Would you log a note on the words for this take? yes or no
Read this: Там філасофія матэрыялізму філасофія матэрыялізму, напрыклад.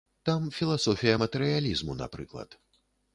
yes